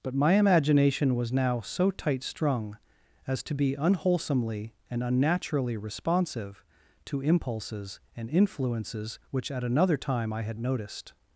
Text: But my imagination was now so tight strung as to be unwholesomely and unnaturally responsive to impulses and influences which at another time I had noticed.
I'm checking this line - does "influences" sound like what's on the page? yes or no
yes